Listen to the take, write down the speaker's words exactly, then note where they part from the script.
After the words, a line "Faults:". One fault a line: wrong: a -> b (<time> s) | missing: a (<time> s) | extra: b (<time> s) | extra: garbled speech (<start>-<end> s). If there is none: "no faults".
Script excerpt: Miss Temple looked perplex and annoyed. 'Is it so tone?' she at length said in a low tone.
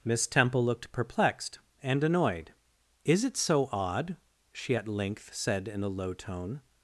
Miss Temple looked perplexed and annoyed. 'Is it so odd?' she at length said in a low tone.
Faults:
wrong: perplex -> perplexed (0.9 s)
wrong: tone -> odd (3.7 s)